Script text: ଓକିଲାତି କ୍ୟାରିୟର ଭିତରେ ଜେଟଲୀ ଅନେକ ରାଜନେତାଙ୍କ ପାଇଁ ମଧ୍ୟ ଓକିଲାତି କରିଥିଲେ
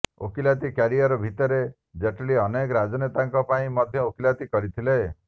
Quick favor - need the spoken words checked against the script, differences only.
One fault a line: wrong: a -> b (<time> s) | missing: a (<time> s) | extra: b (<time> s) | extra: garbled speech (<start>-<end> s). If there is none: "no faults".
no faults